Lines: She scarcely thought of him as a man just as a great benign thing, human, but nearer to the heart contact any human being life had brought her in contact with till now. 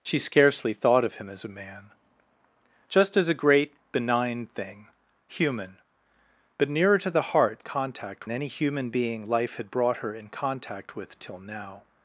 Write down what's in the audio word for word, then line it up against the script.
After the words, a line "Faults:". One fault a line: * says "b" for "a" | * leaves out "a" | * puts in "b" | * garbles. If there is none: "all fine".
She scarcely thought of him as a man just as a great benign thing, human, but nearer to the heart contact any human being life had brought her in contact with till now.
Faults:
all fine